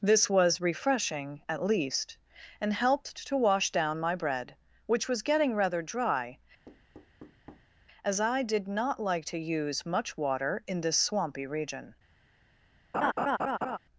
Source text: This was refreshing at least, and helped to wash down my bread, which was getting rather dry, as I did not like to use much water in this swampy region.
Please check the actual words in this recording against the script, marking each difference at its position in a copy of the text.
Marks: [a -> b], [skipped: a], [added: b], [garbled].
This was refreshing at least, and helped to wash down my bread, which was getting rather dry, as I did not like to use much water in this swampy region.